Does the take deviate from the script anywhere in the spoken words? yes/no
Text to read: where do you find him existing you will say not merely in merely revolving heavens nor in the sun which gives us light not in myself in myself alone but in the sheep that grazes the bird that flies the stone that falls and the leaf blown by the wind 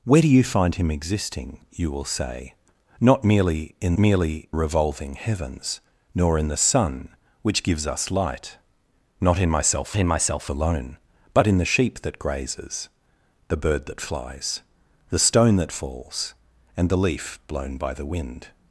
no